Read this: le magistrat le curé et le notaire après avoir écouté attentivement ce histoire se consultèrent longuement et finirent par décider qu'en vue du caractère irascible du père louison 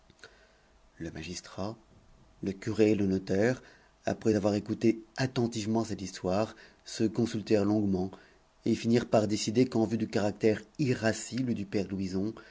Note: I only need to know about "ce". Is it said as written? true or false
false